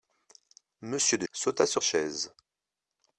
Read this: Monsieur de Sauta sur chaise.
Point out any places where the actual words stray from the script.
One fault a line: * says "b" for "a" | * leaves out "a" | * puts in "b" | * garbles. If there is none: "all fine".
all fine